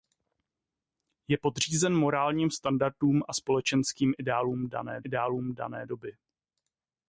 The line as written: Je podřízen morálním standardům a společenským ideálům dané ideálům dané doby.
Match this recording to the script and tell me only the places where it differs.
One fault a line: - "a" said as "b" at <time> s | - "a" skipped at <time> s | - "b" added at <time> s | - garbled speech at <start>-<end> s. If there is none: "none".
none